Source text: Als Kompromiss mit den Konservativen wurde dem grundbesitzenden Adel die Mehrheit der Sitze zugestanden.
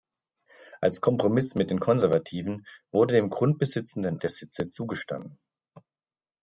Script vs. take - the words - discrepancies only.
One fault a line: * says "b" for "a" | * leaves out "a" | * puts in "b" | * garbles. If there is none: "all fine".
* leaves out "Adel die Mehrheit"